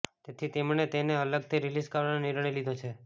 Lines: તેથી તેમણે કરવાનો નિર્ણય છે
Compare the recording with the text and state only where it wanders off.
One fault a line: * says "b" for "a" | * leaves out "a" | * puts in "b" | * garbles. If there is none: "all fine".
* puts in "તેને અલગથી રિલીઝ"
* puts in "લીધો"